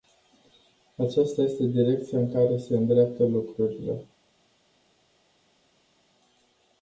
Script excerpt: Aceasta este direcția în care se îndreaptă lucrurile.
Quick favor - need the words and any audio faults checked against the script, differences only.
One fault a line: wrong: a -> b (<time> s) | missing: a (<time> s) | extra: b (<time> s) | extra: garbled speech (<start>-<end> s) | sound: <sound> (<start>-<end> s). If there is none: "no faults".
no faults